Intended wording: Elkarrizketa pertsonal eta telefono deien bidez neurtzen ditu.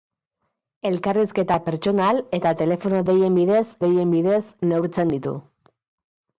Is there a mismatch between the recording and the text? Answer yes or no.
yes